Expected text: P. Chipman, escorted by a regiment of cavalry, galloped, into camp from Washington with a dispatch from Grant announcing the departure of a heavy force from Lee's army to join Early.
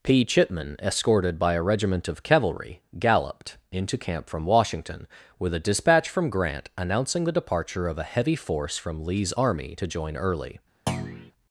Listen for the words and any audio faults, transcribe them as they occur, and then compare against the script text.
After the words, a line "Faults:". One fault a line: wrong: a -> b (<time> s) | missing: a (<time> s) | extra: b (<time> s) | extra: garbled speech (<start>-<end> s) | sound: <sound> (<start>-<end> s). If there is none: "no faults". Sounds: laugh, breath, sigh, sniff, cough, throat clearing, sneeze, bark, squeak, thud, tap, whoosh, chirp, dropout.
P. Chipman, escorted by a regiment of cavalry, galloped, into camp from Washington with a dispatch from Grant announcing the departure of a heavy force from Lee's army to join Early.
Faults:
sound: thud (10.9-11.3 s)